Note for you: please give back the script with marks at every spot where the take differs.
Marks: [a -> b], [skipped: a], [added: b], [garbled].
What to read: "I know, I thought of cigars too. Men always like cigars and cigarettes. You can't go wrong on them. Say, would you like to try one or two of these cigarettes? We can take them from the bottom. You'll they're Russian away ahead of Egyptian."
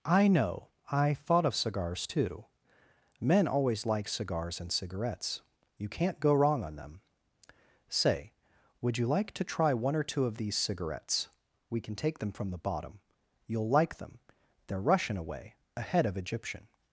"I know, I thought of cigars too. Men always like cigars and cigarettes. You can't go wrong on them. Say, would you like to try one or two of these cigarettes? We can take them from the bottom. You'll [added: like them] they're Russian away ahead of Egyptian."